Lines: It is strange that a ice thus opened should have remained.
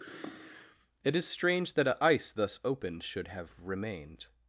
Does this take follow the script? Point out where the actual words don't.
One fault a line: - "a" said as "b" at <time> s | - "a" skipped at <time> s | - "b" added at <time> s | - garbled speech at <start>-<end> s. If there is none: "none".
none